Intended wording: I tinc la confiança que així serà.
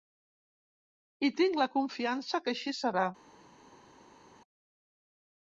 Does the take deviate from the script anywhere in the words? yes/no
no